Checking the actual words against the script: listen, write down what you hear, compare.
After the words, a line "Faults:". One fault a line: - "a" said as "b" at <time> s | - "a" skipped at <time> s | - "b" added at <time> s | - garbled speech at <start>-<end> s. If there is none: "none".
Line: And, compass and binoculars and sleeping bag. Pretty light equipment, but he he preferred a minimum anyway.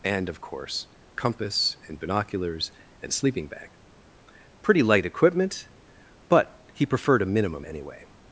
And, of course, compass and binoculars and sleeping bag. Pretty light equipment, but he preferred a minimum anyway.
Faults:
- "of course" added at 0.3 s
- "he" skipped at 6.9 s